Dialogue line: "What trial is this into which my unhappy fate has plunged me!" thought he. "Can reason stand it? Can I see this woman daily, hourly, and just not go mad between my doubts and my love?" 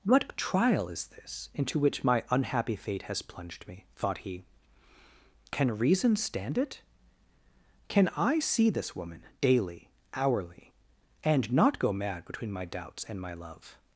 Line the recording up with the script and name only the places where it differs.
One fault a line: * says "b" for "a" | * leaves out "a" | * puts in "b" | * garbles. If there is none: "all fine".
* leaves out "just"